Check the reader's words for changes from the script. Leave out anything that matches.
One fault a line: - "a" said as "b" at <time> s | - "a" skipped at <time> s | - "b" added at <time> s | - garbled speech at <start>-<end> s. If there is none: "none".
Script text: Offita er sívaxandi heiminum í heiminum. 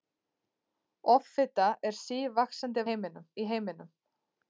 none